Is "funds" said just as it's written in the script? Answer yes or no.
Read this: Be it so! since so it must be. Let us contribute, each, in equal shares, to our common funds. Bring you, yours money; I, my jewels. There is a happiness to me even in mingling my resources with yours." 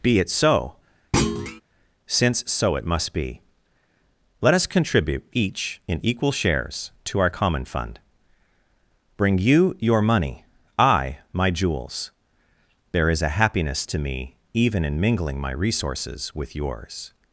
no